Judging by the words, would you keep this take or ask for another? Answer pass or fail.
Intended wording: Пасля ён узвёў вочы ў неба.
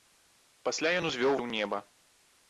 fail